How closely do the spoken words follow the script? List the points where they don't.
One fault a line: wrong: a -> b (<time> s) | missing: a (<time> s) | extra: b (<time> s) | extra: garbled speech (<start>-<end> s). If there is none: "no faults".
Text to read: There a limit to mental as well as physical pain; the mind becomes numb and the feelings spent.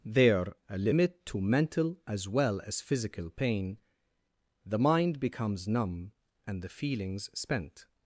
no faults